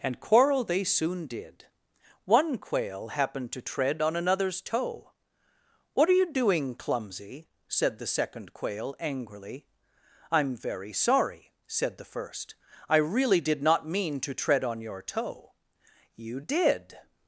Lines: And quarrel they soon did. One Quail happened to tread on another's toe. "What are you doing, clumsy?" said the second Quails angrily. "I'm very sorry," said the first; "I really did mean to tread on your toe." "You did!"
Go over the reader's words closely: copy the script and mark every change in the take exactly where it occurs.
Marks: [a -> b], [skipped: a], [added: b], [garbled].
And quarrel they soon did. One Quail happened to tread on another's toe. "What are you doing, clumsy?" said the second [Quails -> Quail] angrily. "I'm very sorry," said the first; "I really did [added: not] mean to tread on your toe." "You did!"